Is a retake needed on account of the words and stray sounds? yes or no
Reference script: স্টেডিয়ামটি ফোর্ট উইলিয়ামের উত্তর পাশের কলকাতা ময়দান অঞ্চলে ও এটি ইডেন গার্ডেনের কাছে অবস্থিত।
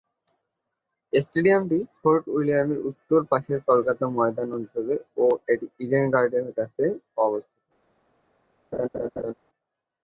yes